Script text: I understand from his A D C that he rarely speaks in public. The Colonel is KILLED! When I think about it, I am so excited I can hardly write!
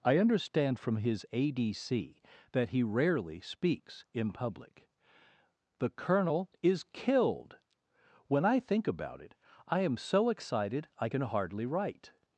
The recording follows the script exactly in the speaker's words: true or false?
true